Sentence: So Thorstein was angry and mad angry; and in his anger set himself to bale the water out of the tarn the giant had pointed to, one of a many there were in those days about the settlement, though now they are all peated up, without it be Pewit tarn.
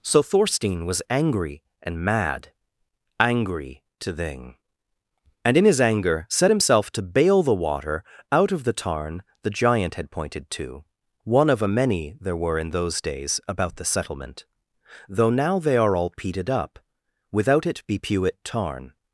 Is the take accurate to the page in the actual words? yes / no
no